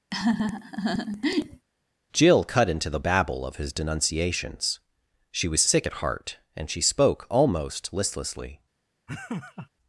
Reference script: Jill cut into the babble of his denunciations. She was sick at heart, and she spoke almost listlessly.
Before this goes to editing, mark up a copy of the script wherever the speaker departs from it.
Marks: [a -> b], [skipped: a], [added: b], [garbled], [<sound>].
[laugh] Jill cut into the babble of his denunciations. She was sick at heart, and she spoke almost listlessly. [laugh]